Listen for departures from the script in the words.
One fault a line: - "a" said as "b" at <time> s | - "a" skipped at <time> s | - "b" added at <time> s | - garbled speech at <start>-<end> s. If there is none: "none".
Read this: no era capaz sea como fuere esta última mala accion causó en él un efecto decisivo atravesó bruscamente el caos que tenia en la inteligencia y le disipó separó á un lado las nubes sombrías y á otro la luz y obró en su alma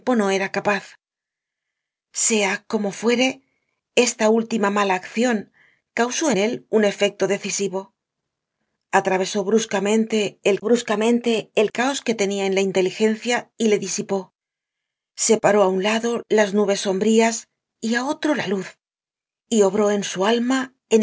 - "en" skipped at 6.3 s
- "bruscamente el" added at 10.6 s